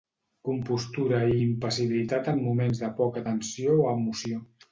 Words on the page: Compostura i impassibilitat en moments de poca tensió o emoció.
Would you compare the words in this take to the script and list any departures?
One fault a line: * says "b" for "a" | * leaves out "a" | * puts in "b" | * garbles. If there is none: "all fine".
all fine